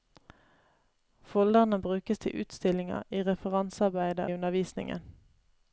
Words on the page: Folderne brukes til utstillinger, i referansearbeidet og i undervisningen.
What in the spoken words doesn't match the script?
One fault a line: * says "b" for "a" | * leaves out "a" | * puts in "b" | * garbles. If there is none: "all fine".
* leaves out "og"